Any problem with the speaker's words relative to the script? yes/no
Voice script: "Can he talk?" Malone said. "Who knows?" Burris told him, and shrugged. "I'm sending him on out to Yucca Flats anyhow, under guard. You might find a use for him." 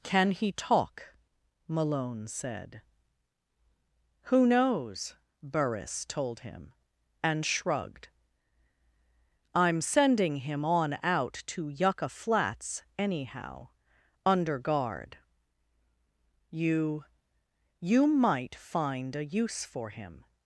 yes